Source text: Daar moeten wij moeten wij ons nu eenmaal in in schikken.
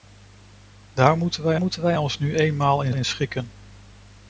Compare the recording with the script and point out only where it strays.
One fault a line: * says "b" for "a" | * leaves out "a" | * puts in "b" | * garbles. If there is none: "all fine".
all fine